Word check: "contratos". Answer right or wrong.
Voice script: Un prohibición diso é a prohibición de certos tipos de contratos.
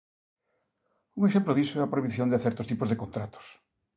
right